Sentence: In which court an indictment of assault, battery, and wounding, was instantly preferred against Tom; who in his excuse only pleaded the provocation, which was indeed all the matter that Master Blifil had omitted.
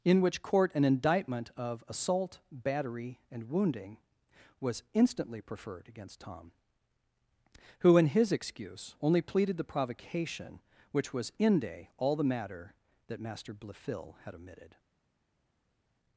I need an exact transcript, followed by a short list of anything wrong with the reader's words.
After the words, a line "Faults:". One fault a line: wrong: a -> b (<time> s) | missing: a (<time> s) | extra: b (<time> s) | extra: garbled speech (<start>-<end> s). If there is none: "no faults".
In which court an indictment of assault, battery, and wounding, was instantly preferred against Tom; who in his excuse only pleaded the provocation, which was inde all the matter that Master Blifil had omitted.
Faults:
wrong: indeed -> inde (11.4 s)